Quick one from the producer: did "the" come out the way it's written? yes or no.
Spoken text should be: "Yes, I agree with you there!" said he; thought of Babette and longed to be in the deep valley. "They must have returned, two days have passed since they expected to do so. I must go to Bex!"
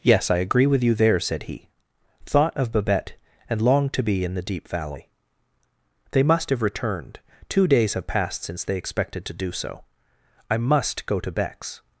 yes